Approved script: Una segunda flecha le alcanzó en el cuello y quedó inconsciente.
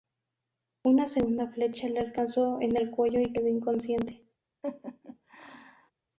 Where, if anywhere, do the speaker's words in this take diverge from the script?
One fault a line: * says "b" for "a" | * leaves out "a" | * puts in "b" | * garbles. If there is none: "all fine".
all fine